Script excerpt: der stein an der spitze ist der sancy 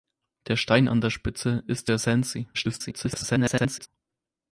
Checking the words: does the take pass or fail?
fail